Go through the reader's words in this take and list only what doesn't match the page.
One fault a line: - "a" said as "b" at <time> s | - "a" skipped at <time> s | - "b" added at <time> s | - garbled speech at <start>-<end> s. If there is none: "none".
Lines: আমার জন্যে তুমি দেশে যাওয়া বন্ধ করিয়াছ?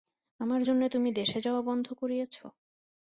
none